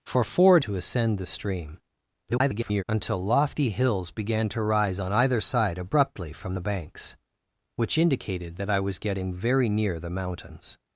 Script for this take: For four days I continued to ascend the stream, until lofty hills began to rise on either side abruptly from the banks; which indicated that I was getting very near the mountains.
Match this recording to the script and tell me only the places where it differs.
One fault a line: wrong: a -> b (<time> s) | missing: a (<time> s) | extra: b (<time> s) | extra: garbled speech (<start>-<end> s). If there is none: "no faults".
missing: days I continued (0.6 s)
extra: garbled speech (2.3-2.8 s)